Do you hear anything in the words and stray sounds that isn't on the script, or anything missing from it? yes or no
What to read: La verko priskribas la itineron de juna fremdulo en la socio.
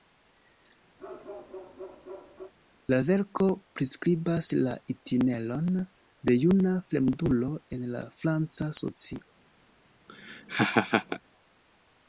yes